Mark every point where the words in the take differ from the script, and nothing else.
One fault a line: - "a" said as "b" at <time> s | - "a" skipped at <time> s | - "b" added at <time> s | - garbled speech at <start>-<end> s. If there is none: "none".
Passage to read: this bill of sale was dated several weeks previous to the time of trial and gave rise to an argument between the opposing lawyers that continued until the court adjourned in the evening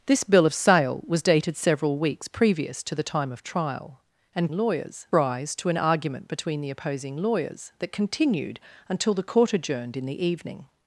- "gave" said as "lawyers" at 4.5 s